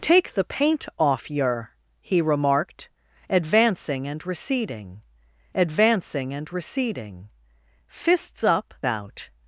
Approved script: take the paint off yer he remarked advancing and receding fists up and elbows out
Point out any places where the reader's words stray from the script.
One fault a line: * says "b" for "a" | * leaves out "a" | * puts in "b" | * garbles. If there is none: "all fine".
* puts in "advancing and receding"
* leaves out "and elbows"